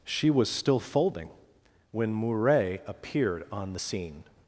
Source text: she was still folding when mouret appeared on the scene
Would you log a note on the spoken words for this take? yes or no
no